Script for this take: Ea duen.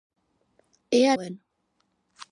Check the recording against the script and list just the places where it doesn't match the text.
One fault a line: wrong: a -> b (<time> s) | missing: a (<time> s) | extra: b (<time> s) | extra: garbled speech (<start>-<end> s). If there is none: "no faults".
no faults